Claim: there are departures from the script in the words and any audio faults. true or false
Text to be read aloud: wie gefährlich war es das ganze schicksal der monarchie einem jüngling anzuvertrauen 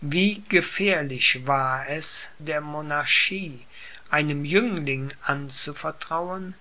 true